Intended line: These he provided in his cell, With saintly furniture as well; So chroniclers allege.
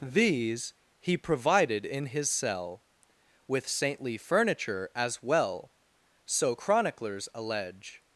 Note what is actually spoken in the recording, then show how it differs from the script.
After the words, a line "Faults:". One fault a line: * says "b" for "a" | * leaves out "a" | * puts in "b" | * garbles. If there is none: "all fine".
These he provided in his cell, With saintly furniture as well; So chroniclers allege.
Faults:
all fine